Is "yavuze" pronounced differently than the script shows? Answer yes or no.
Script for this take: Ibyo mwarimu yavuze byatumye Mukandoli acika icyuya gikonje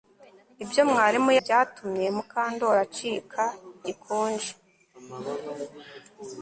yes